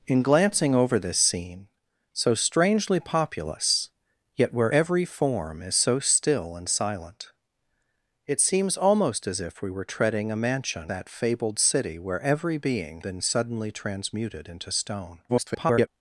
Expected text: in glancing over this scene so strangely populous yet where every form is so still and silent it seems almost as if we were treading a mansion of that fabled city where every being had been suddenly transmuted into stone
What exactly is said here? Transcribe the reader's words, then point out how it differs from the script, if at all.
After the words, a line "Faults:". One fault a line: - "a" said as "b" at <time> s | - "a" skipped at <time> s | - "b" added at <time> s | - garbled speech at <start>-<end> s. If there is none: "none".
in glancing over this scene so strangely populous yet where every form is so still and silent it seems almost as if we were treading a mansion that fabled city where every being been suddenly transmuted into stone [garbled]
Faults:
- "of" skipped at 10.9 s
- "had" skipped at 13.0 s
- garbled speech at 15.3-15.9 s